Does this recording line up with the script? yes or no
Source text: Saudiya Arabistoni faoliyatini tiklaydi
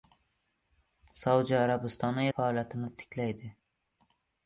yes